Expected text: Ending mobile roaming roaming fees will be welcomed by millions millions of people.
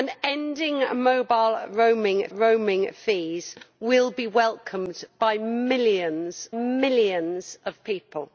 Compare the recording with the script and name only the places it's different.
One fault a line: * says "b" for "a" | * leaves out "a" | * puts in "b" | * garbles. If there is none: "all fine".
all fine